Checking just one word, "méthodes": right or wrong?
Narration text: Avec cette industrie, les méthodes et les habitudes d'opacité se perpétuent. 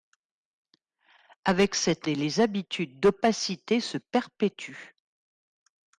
wrong